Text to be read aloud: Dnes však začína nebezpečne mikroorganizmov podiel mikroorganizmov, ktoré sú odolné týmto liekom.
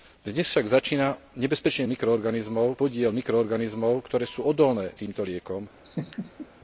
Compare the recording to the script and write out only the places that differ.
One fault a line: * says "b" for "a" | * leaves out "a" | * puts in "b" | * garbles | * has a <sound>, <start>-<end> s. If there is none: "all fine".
* has a laugh, 5.8-6.5 s